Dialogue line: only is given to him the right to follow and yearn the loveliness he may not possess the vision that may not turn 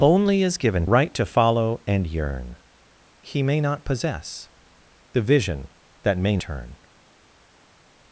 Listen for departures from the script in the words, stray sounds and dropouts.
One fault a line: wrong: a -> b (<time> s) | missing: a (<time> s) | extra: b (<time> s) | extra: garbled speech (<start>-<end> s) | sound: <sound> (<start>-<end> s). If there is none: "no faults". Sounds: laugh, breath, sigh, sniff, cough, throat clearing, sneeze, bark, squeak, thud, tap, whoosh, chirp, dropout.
missing: to him the (0.9 s)
missing: the loveliness (2.6 s)
missing: not (6.4 s)